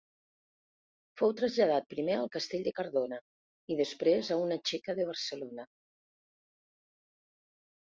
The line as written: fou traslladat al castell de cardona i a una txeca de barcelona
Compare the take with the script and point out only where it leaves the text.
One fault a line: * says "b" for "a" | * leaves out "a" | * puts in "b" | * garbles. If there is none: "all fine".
* puts in "primer"
* puts in "després"